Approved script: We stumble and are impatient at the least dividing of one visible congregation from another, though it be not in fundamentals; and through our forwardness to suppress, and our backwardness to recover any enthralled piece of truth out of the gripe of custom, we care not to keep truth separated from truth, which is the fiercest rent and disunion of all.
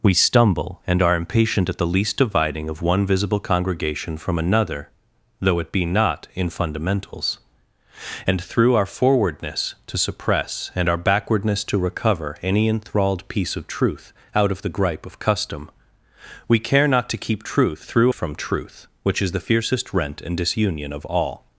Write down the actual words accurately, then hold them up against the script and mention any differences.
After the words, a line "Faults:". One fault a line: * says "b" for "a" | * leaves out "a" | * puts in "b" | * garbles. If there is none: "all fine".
We stumble and are impatient at the least dividing of one visible congregation from another, though it be not in fundamentals; and through our forwardness to suppress, and our backwardness to recover any enthralled piece of truth out of the gripe of custom, we care not to keep truth through from truth, which is the fiercest rent and disunion of all.
Faults:
* says "through" for "separated"